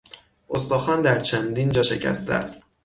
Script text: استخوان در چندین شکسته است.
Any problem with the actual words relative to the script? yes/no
yes